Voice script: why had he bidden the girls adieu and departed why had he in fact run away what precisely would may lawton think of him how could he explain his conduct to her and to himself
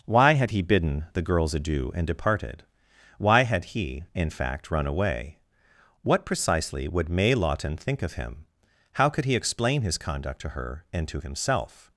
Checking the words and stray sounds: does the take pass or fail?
pass